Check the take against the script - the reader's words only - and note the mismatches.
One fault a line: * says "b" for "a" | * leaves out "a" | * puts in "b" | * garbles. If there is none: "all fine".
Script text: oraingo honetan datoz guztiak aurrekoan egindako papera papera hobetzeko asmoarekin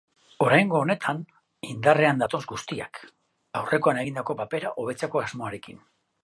* puts in "indarrean"
* leaves out "papera"